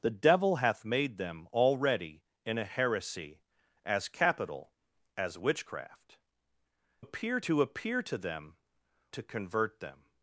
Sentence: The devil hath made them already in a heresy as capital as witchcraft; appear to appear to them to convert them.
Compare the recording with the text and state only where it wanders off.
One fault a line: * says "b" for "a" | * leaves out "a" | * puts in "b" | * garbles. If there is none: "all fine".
all fine